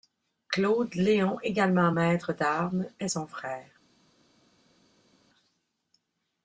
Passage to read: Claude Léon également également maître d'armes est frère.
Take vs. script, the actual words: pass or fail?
fail